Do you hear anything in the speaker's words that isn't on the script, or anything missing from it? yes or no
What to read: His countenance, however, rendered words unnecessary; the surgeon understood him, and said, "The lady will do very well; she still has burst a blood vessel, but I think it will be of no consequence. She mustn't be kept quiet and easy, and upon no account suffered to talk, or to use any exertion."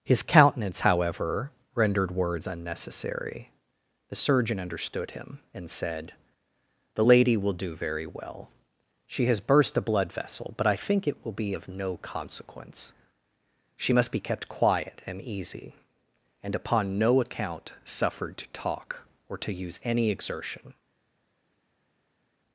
yes